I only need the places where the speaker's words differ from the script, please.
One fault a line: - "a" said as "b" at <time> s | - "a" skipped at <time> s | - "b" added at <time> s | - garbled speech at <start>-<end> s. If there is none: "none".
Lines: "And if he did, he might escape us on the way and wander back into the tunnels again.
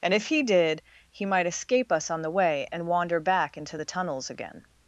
none